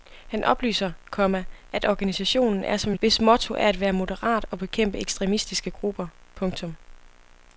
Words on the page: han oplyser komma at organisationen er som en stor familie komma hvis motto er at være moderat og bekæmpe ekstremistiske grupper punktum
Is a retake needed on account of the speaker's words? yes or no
yes